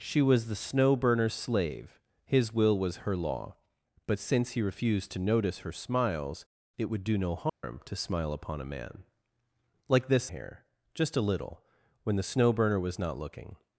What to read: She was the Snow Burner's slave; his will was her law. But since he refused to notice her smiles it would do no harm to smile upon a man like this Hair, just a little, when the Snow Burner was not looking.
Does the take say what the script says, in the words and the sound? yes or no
no